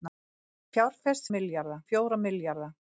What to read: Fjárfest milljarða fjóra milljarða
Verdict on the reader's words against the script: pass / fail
pass